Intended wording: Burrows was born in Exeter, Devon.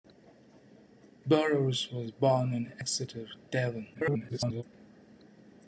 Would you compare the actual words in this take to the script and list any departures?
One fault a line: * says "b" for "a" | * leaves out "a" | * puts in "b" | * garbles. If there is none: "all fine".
* garbles